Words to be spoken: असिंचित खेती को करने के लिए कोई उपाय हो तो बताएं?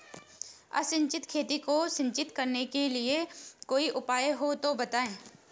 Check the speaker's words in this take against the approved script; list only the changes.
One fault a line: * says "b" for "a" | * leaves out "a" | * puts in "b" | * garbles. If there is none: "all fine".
* puts in "सिंचित"